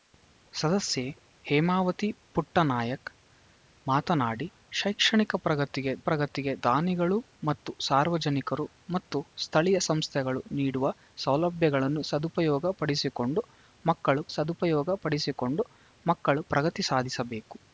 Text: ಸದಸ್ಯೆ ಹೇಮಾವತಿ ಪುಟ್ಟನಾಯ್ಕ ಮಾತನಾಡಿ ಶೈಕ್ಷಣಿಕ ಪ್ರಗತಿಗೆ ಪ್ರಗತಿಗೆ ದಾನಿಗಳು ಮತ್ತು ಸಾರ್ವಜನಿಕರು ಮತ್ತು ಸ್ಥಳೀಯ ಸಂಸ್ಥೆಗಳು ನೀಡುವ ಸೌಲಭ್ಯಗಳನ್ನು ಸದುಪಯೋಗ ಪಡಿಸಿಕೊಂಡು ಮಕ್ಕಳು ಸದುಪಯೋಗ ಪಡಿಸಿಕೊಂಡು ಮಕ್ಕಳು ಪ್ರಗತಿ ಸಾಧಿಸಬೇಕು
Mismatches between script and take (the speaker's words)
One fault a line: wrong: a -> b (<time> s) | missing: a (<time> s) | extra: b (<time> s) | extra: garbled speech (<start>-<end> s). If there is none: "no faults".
no faults